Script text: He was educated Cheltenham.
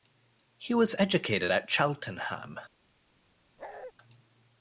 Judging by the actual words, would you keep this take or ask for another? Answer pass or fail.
fail